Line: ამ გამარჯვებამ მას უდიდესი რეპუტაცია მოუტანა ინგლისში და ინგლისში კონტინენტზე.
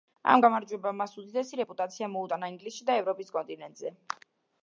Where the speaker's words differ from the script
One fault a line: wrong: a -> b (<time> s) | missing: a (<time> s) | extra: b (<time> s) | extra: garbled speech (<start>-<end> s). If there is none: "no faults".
wrong: ინგლისში -> ევროპის (3.0 s)